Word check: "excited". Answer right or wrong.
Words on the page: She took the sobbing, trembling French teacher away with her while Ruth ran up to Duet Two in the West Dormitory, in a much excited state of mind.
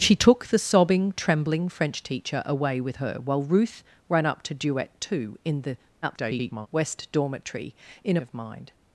wrong